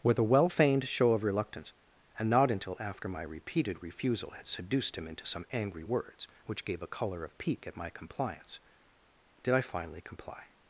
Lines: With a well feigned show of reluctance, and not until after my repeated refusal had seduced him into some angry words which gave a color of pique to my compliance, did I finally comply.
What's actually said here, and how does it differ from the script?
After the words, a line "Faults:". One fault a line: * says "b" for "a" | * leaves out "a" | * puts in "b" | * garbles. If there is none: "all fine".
With a well feigned show of reluctance, and not until after my repeated refusal had seduced him into some angry words which gave a color of pique at my compliance, did I finally comply.
Faults:
* says "at" for "to"